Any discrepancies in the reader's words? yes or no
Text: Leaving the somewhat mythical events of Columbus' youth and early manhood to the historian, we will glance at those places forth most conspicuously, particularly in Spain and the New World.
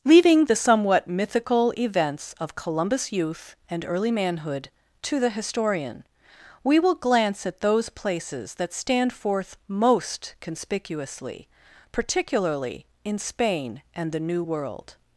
yes